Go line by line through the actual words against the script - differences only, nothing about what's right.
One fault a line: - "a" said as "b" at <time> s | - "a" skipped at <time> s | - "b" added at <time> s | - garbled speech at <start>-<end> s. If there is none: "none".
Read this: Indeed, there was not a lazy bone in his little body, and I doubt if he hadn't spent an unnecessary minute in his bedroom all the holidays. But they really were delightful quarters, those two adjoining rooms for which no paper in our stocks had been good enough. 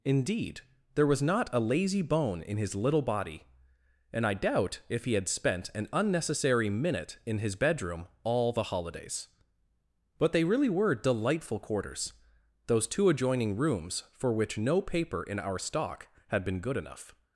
- "hadn't" said as "had" at 5.1 s
- "stocks" said as "stock" at 15.6 s